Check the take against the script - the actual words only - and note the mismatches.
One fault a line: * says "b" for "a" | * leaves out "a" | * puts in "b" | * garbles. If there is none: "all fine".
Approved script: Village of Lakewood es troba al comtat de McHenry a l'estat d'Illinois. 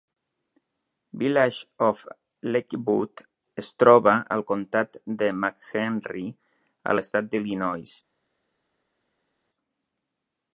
all fine